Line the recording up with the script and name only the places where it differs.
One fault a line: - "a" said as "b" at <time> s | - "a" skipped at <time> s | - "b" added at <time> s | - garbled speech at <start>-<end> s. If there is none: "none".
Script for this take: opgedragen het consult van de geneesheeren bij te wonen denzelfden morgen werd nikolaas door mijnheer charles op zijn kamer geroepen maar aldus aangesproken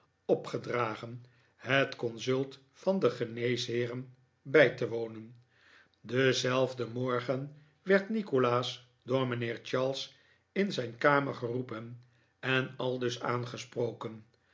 - "op" said as "in" at 10.5 s
- "maar" said as "en" at 12.4 s